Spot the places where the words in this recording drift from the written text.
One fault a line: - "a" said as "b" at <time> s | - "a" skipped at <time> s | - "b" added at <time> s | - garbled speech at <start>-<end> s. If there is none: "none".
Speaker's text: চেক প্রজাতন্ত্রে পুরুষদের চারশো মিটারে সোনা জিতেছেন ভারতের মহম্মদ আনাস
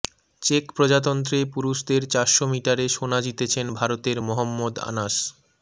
none